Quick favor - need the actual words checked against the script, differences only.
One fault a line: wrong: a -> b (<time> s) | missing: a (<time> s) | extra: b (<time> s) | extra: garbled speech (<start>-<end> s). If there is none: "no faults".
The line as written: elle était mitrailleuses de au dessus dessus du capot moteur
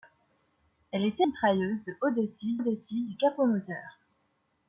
no faults